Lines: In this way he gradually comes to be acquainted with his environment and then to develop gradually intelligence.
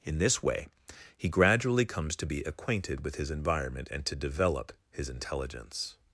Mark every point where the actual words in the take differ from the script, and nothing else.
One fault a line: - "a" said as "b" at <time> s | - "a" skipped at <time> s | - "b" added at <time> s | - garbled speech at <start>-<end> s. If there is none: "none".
- "then" skipped at 4.0 s
- "gradually" said as "his" at 4.9 s